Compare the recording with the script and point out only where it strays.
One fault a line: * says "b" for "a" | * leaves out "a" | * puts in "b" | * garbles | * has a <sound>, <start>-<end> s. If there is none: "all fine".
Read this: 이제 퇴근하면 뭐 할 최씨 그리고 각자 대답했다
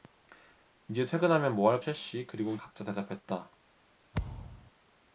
* has a thud, 4.1-4.7 s